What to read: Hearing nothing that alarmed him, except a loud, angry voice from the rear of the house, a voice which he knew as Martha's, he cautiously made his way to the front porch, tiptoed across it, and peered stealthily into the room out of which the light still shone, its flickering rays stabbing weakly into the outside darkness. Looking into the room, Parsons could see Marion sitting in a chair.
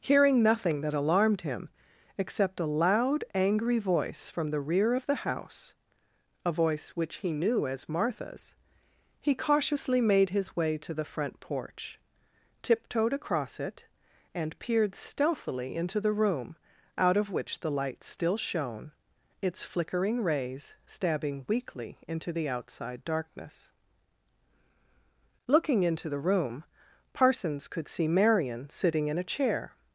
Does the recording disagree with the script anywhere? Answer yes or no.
no